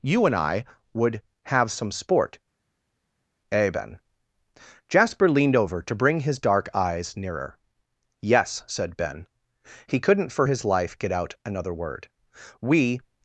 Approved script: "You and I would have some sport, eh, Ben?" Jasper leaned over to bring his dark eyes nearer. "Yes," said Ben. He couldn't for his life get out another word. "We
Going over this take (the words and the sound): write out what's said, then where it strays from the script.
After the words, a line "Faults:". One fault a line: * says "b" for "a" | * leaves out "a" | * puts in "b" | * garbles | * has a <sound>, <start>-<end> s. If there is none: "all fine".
"You and I would have some sport, eh, Ben?" Jasper leaned over to bring his dark eyes nearer. "Yes," said Ben. He couldn't for his life get out another word. "We
Faults:
all fine